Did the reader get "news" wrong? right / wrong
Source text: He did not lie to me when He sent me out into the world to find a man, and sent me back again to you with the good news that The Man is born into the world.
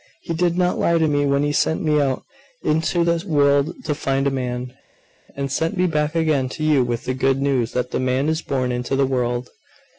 right